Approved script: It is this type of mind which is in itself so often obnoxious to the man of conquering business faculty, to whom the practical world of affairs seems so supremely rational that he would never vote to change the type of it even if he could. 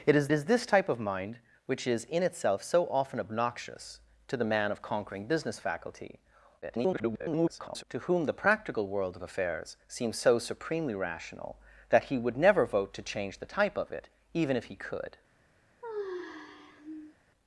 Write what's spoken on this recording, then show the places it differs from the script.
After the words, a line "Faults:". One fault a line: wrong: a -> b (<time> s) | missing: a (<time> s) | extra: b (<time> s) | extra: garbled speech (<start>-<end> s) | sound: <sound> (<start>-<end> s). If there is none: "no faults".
It is is this type of mind which is in itself so often obnoxious to the man of conquering business faculty, [garbled] to whom the practical world of affairs seems so supremely rational that he would never vote to change the type of it even if he could.
Faults:
extra: is (0.3 s)
extra: garbled speech (6.6-7.8 s)
sound: sigh (15.8-17.2 s)